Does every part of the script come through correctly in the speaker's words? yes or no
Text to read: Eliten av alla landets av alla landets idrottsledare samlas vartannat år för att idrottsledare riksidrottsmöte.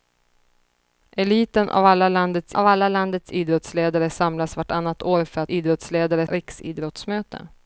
yes